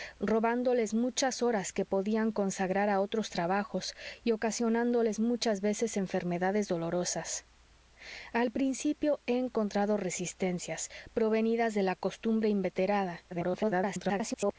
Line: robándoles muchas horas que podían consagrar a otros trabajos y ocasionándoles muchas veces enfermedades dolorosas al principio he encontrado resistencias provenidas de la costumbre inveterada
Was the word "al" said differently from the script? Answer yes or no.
no